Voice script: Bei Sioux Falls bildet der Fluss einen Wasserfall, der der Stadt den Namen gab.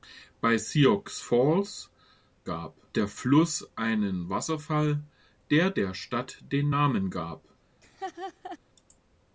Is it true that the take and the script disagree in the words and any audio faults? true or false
true